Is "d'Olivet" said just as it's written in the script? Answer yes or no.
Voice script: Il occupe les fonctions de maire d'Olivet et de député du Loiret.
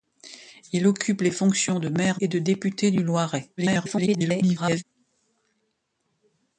no